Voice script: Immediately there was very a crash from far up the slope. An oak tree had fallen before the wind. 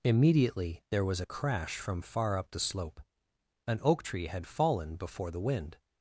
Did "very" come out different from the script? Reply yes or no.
yes